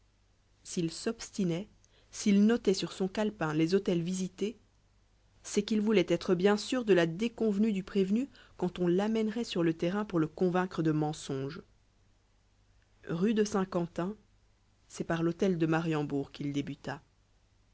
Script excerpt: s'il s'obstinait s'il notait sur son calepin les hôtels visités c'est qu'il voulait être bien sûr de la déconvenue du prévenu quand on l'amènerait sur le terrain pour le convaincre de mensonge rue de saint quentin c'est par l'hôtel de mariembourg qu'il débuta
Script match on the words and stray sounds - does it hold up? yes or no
yes